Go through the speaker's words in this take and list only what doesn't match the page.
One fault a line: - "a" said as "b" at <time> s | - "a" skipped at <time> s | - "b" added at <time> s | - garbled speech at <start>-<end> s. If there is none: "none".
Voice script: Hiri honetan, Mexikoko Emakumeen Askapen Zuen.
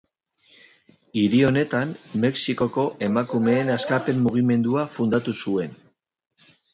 - "Mugimendua fundatu" added at 4.3 s